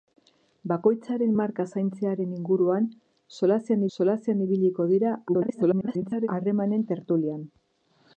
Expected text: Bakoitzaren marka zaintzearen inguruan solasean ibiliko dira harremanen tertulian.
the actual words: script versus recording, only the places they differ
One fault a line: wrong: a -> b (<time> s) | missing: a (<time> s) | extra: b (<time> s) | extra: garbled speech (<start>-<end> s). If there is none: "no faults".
extra: solasean (4.0 s)
extra: garbled speech (5.3-6.3 s)